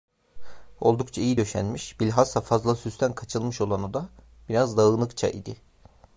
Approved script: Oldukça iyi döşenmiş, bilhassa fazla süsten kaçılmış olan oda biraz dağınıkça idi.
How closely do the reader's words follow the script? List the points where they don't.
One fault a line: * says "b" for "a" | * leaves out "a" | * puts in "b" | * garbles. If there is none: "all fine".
all fine